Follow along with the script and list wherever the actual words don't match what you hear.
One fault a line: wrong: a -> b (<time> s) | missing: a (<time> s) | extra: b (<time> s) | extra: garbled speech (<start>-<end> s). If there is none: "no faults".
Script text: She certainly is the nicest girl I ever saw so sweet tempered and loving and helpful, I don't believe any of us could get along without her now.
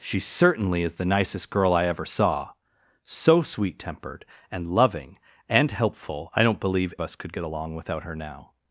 missing: any of (6.9 s)